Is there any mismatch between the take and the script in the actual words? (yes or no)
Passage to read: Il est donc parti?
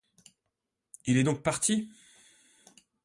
no